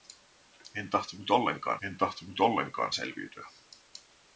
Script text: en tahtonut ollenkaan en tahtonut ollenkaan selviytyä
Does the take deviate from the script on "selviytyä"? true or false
false